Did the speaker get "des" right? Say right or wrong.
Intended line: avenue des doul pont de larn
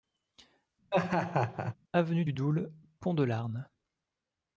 wrong